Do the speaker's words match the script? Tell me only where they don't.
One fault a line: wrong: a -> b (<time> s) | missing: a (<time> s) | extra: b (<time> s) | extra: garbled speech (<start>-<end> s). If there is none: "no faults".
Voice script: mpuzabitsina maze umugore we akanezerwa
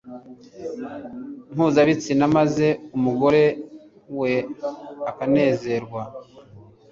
no faults